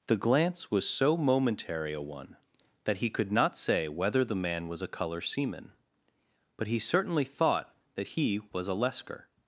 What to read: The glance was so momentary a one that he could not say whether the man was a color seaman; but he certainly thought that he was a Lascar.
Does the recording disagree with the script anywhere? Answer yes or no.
no